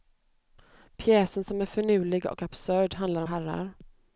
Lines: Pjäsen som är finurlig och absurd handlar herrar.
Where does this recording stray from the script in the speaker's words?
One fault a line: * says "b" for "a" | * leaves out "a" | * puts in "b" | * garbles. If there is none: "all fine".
all fine